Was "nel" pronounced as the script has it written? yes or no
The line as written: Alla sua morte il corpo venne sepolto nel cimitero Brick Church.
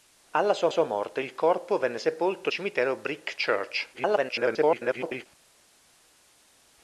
no